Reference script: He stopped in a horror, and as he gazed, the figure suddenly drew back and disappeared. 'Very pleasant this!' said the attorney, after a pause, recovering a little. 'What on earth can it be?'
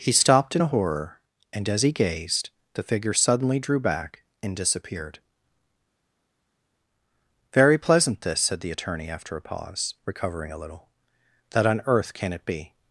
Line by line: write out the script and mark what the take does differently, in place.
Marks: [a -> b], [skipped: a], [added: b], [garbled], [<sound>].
He stopped in a horror, and as he gazed, the figure suddenly drew back and disappeared. 'Very pleasant this!' said the attorney, after a pause, recovering a little. ['What -> That] on earth can it be?'